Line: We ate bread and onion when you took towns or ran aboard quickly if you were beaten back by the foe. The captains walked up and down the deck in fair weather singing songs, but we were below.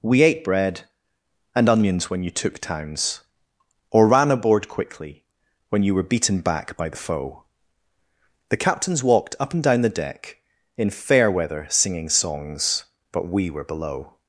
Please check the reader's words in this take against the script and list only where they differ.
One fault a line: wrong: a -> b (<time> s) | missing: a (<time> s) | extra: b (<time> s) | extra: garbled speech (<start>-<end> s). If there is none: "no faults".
wrong: onion -> onions (1.7 s)
wrong: if -> when (5.7 s)